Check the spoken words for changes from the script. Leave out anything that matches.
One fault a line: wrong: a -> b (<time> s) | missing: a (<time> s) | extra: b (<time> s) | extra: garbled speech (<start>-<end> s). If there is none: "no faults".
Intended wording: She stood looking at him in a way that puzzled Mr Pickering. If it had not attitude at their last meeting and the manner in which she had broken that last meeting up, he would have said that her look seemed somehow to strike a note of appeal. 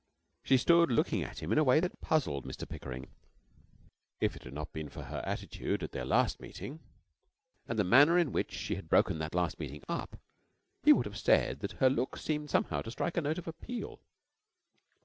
extra: been for her (4.7 s)